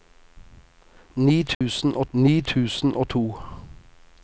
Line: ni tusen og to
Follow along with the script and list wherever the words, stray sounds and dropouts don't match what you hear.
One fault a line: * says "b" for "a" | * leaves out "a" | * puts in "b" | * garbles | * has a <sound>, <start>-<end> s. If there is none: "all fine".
* has a dropout, 1.5-1.6 s
* puts in "ni tusen og"